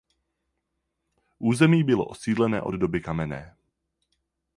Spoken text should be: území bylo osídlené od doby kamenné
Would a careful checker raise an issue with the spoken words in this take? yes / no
no